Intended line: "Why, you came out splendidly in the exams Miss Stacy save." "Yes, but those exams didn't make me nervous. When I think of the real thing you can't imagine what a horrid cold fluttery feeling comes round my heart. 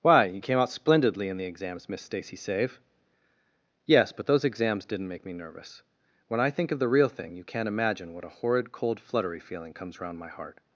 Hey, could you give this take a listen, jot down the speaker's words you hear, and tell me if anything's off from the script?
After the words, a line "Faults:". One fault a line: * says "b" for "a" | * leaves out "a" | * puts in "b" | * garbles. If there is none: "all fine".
"Why, you came out splendidly in the exams Miss Stacy save." "Yes, but those exams didn't make me nervous. When I think of the real thing you can't imagine what a horrid cold fluttery feeling comes round my heart.
Faults:
all fine